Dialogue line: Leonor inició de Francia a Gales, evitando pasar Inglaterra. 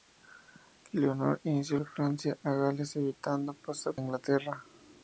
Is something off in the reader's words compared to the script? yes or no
no